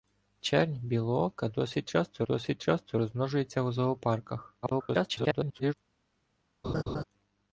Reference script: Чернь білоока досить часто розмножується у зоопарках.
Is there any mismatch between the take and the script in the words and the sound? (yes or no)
yes